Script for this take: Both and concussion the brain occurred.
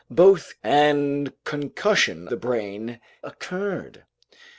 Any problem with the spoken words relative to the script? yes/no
no